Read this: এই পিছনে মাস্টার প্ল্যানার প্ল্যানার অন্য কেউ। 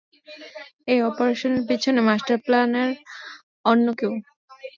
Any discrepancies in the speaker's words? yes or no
yes